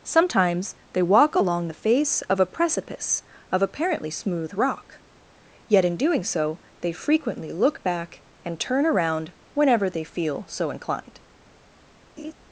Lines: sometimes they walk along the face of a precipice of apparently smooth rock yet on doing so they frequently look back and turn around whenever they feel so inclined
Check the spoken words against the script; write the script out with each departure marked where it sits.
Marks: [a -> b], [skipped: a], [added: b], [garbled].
sometimes they walk along the face of a precipice of apparently smooth rock yet [on -> in] doing so they frequently look back and turn around whenever they feel so inclined